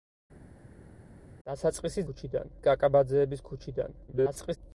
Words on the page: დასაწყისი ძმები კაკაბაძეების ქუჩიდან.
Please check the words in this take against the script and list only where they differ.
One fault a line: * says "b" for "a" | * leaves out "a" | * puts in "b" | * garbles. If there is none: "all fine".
* says "ქუჩიდან" for "ძმები"
* garbles